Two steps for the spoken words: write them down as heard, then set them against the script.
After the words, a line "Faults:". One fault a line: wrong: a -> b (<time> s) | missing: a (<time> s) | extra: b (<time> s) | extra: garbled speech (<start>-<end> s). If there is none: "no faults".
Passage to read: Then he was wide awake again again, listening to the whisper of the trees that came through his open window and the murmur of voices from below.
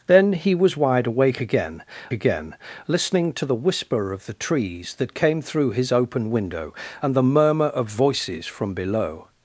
Then he was wide awake again again, listening to the whisper of the trees that came through his open window and the murmur of voices from below.
Faults:
no faults